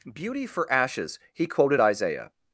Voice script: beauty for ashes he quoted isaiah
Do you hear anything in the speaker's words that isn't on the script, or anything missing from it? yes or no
no